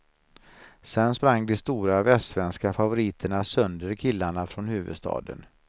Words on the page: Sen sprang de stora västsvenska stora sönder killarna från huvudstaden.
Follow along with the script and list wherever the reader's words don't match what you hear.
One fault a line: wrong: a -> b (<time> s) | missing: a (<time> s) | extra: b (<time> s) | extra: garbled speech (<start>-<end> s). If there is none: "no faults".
wrong: stora -> favoriterna (2.7 s)